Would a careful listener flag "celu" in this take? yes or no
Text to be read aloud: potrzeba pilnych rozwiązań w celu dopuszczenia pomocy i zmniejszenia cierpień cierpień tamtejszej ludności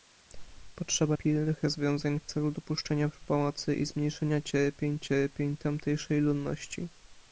no